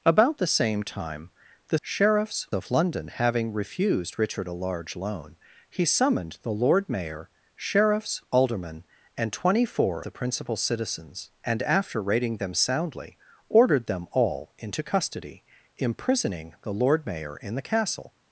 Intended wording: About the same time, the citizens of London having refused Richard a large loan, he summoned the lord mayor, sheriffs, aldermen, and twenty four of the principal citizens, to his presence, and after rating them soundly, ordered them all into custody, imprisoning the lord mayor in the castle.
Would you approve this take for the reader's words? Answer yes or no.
no